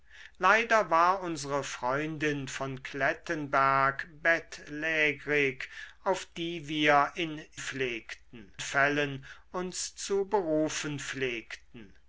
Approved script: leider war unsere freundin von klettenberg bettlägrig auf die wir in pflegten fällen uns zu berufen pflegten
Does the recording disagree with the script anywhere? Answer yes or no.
no